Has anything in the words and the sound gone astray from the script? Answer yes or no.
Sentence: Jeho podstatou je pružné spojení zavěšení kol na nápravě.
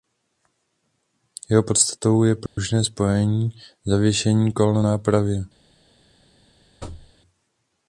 yes